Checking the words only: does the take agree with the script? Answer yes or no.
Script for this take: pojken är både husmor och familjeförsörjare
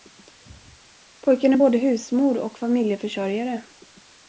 yes